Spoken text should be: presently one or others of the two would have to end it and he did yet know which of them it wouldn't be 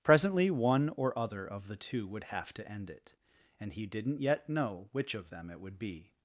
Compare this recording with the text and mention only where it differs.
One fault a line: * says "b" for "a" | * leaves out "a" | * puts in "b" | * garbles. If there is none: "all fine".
* says "other" for "others"
* says "didn't" for "did"
* says "would" for "wouldn't"